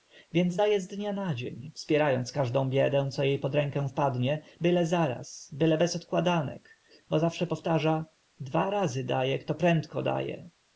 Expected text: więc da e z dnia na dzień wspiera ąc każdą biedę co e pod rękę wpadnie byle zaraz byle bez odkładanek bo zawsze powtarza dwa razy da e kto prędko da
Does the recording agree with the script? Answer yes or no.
yes